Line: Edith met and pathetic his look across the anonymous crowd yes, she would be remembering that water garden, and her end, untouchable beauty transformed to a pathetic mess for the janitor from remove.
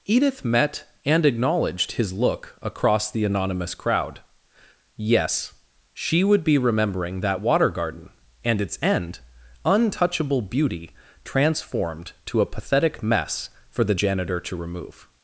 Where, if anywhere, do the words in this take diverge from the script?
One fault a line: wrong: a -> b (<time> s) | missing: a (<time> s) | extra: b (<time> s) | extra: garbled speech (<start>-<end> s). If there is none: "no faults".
wrong: pathetic -> acknowledged (1.2 s)
wrong: her -> its (8.6 s)
wrong: from -> to (14.4 s)